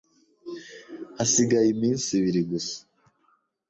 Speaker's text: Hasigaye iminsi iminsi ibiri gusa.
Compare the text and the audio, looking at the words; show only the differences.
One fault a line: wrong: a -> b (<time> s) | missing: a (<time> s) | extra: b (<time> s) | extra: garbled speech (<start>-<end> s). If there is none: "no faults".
missing: iminsi (2.1 s)